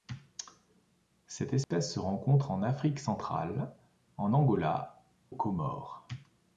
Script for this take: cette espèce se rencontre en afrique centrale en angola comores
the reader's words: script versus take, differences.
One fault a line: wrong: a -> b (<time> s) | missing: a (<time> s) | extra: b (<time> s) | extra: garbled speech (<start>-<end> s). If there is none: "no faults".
no faults